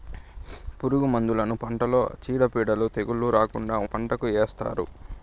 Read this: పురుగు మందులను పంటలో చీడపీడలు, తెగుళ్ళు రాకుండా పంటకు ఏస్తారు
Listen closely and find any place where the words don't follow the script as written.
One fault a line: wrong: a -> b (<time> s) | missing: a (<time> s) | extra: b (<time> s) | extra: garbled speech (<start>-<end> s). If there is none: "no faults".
no faults